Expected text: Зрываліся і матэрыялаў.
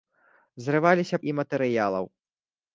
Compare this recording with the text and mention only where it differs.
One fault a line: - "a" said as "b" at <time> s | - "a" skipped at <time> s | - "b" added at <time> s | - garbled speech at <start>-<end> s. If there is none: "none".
none